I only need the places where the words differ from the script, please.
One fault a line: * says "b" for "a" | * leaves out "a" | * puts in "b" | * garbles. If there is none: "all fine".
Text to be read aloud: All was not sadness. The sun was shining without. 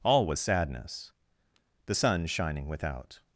* leaves out "not"
* leaves out "was"